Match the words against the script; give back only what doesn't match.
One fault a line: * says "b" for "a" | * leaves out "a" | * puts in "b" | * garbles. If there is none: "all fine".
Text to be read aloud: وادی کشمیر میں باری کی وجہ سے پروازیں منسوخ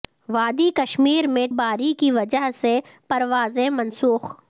all fine